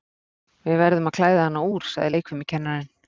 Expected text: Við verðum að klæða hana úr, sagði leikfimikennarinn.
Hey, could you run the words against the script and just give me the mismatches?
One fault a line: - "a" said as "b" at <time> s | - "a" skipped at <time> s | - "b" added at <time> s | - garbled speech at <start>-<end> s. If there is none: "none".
none